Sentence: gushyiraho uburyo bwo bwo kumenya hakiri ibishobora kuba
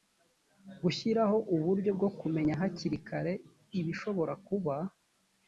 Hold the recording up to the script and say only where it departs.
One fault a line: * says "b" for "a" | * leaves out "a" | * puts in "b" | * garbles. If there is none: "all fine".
* leaves out "bwo"
* puts in "kare"